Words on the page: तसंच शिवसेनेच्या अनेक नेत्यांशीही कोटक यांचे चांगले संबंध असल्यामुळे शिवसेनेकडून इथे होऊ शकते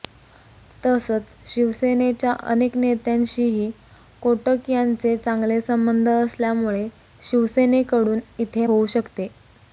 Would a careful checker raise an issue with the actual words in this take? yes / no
no